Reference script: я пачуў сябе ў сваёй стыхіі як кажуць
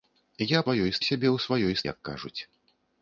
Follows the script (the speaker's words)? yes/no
no